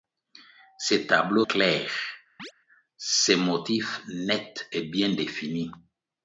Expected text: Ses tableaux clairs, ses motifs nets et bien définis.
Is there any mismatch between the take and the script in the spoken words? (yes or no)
no